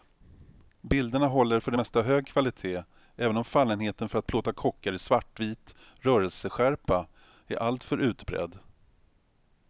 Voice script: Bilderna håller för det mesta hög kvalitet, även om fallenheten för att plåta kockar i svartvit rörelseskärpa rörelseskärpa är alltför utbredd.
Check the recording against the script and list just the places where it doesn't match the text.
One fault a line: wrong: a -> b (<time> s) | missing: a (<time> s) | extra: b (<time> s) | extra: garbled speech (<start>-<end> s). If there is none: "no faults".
missing: rörelseskärpa (7.1 s)